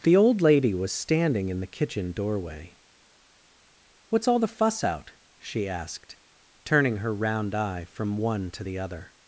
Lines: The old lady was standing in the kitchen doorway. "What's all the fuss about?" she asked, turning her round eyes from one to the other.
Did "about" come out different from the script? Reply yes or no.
yes